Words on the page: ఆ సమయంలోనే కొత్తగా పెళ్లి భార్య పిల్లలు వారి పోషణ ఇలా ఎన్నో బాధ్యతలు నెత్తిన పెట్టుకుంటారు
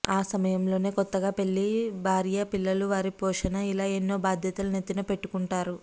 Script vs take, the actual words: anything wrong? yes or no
no